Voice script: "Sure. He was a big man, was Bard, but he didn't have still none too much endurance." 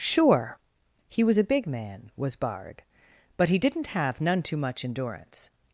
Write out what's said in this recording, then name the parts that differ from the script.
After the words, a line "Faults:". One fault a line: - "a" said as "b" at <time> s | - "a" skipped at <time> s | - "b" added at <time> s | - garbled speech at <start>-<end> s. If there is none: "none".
"Sure. He was a big man, was Bard, but he didn't have none too much endurance."
Faults:
- "still" skipped at 4.2 s